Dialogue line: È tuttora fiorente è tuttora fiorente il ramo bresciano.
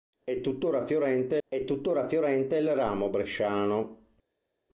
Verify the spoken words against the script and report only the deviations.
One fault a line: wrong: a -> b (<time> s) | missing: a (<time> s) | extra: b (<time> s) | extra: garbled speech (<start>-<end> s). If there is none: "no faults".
no faults